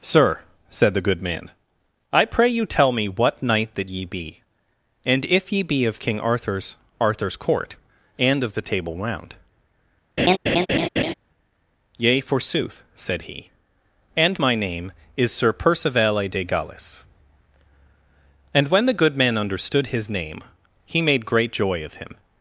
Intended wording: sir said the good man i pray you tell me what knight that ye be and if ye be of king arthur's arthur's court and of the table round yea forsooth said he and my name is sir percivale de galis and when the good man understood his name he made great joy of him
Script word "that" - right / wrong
right